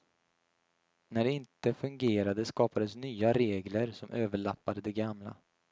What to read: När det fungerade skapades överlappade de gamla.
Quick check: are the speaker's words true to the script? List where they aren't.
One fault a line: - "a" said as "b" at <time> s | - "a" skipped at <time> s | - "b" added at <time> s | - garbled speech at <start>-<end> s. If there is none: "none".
- "inte" added at 1.3 s
- "nya regler som" added at 3.0 s